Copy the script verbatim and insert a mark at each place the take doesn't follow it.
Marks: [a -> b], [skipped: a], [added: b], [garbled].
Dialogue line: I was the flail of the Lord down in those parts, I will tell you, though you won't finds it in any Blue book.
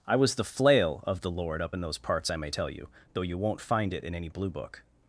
I was the flail of the Lord [down -> up] in those parts, I [will -> may] tell you, though you won't [finds -> find] it in any Blue book.